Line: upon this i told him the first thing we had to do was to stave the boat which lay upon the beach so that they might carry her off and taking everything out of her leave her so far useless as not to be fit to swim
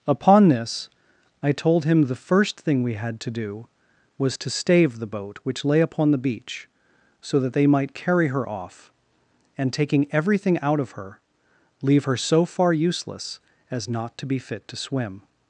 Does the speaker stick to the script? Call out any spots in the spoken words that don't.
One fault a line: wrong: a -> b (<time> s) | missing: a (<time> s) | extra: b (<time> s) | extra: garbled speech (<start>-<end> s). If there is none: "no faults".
no faults